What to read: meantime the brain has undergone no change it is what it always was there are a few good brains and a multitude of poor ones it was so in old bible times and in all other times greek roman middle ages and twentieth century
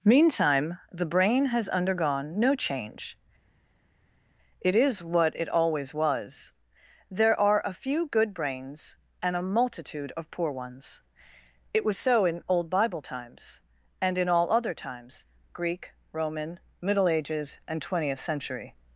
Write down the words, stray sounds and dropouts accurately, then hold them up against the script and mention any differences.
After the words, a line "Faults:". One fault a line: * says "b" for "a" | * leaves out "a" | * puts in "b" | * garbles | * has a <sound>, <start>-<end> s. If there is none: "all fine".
meantime the brain has undergone no change it is what it always was there are a few good brains and a multitude of poor ones it was so in old bible times and in all other times greek roman middle ages and twentieth century
Faults:
all fine